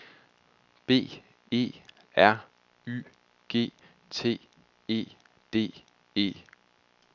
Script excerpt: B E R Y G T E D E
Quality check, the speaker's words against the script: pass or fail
pass